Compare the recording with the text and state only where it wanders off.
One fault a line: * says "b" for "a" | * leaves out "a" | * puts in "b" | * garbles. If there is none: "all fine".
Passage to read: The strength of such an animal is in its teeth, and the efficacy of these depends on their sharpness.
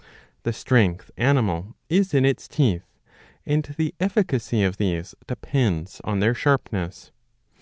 * leaves out "of such an"